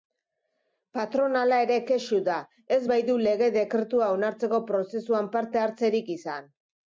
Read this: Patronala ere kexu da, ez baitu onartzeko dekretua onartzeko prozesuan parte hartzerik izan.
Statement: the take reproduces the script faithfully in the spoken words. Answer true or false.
false